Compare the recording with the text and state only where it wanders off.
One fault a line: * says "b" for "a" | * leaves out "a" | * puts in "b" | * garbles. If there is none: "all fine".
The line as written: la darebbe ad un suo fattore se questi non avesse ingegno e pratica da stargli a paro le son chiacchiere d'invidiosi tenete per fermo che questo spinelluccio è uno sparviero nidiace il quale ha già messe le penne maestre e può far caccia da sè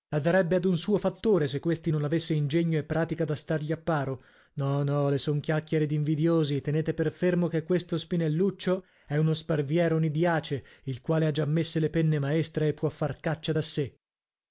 * puts in "no no"